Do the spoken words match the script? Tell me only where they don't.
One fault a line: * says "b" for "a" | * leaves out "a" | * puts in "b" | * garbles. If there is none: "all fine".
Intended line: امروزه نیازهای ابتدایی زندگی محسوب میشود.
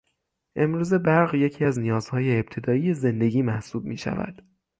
* puts in "برق یکی از"